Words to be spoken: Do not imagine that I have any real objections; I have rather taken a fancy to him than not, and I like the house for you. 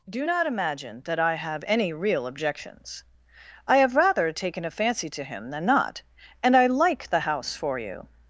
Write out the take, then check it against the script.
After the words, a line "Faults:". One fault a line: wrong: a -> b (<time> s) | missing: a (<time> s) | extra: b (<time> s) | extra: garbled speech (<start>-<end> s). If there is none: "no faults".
Do not imagine that I have any real objections; I have rather taken a fancy to him than not, and I like the house for you.
Faults:
no faults